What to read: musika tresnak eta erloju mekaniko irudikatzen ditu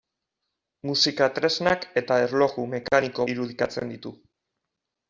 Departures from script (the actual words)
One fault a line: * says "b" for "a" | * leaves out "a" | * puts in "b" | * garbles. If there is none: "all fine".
all fine